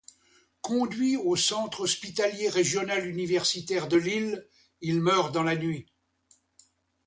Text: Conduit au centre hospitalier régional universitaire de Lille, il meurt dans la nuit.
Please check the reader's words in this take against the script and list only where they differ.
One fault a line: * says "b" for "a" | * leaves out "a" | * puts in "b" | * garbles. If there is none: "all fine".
all fine